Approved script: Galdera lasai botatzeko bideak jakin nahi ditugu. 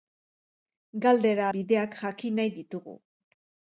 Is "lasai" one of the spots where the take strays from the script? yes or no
yes